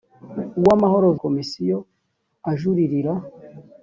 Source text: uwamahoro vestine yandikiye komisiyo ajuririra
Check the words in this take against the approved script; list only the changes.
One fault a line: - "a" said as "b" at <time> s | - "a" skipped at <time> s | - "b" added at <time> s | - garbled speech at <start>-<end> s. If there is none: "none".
- "vestine yandikiye" skipped at 1.1 s